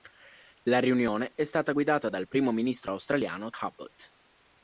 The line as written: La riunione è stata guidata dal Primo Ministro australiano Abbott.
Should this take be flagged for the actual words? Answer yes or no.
no